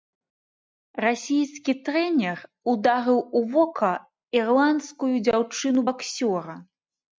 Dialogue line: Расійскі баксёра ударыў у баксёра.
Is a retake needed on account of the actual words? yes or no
yes